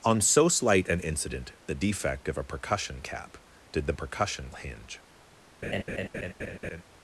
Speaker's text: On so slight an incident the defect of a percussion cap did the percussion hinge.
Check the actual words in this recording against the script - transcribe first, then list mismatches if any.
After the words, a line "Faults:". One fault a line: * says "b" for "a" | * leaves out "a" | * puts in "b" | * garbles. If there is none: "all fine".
On so slight an incident the defect of a percussion cap did the percussion hinge.
Faults:
all fine